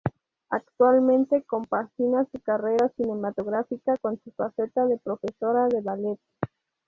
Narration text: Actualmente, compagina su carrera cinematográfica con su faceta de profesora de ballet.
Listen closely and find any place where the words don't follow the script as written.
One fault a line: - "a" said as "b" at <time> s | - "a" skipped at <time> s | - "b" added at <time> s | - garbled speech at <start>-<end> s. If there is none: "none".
none